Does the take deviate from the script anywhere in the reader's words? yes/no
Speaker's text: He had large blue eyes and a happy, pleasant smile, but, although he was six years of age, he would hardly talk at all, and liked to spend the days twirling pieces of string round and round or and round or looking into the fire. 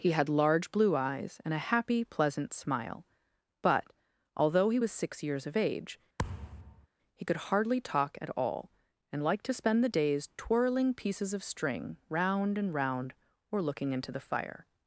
yes